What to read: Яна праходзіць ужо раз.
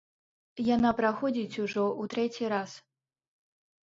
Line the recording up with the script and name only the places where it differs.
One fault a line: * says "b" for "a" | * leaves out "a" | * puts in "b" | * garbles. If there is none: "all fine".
* puts in "ў трэці"